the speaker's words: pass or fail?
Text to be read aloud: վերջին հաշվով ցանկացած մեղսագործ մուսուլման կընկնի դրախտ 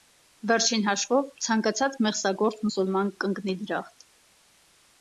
pass